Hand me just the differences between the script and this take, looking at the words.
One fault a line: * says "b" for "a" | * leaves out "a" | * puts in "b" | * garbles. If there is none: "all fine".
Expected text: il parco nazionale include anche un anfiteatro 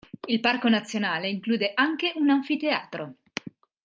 all fine